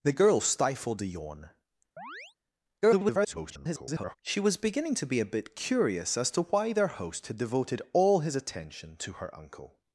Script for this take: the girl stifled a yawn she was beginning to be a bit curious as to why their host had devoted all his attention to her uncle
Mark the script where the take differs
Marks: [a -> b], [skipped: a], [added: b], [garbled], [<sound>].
the girl stifled a yawn [chirp] [garbled] she was beginning to be a bit curious as to why their host had devoted all his attention to her uncle